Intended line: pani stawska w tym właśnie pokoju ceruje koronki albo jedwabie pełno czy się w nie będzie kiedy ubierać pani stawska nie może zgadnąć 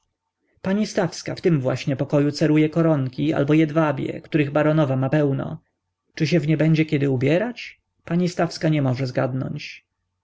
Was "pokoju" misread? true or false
false